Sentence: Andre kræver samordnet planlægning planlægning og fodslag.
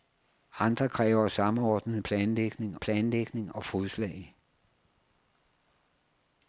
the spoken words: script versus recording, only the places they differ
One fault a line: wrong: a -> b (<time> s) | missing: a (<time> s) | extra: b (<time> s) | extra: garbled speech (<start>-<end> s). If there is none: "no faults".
no faults